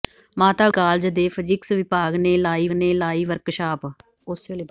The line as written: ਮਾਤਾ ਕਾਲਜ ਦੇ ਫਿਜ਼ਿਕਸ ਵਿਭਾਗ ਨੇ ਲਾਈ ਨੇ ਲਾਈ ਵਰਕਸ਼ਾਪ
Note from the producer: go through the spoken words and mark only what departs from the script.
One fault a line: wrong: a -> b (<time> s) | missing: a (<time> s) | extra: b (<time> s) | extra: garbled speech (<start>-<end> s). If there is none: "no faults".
no faults